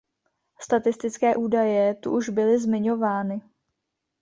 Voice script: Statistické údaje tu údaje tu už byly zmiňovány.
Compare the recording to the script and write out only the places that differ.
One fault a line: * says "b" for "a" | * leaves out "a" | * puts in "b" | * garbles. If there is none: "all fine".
* leaves out "údaje tu"